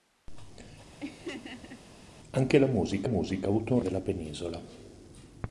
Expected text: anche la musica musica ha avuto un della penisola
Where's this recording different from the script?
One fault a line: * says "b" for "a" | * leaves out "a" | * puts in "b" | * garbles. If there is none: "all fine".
all fine